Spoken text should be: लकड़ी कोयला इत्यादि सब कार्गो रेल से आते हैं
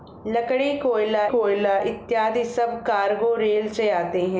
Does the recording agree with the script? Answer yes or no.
no